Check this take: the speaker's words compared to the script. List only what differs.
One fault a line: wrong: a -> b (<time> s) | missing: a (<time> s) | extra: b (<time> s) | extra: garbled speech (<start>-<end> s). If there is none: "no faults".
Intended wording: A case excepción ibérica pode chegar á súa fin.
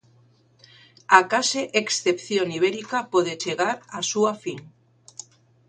no faults